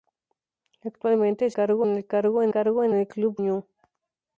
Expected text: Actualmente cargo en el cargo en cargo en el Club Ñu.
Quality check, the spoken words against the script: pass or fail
pass